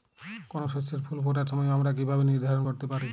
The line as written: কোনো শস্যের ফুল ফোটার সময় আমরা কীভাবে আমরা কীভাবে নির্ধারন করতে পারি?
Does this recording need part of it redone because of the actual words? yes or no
yes